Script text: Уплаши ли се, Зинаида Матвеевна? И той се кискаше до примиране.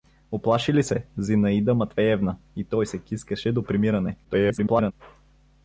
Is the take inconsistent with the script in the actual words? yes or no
yes